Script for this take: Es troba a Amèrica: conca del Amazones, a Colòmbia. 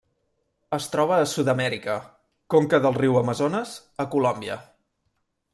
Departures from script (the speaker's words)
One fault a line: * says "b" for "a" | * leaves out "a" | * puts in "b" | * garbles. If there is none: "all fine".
* puts in "Sud"
* puts in "riu"